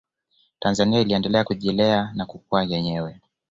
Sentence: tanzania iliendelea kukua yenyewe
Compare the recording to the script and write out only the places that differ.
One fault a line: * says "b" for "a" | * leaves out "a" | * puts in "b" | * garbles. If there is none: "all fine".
* puts in "kujilea na"